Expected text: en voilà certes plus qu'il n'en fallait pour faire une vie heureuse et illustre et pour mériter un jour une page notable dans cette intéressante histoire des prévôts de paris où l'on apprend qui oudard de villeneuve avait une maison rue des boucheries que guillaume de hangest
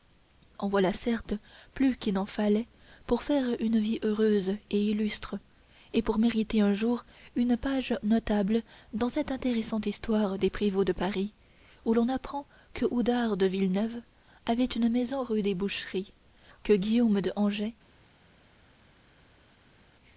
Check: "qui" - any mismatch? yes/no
yes